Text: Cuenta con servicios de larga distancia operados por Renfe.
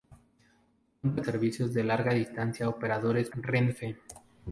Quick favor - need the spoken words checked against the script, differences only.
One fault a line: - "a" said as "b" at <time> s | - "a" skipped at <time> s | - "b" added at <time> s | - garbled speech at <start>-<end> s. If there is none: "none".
- "con" skipped at 1.2 s
- "por" skipped at 3.3 s